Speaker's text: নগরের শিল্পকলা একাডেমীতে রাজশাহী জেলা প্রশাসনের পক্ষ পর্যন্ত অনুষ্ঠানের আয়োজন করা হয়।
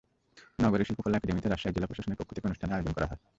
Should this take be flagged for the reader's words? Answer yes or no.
yes